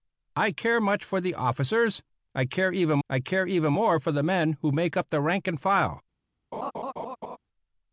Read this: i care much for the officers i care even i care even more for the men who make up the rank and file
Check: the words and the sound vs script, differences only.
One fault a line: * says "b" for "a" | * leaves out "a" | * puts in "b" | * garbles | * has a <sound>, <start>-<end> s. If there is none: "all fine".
* has a laugh, 6.5-7.4 s